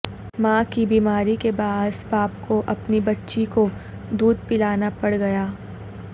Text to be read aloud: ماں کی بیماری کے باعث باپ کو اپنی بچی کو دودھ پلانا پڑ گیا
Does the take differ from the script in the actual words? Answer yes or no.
no